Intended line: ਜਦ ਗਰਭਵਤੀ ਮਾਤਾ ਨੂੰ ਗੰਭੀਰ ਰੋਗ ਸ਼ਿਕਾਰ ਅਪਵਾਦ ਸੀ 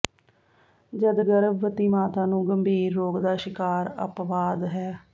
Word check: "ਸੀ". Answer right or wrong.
wrong